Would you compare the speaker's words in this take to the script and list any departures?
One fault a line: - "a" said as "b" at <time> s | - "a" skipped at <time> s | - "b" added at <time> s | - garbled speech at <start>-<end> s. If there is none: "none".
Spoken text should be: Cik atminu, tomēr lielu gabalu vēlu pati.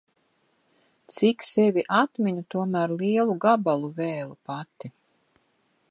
- "sevi" added at 1.5 s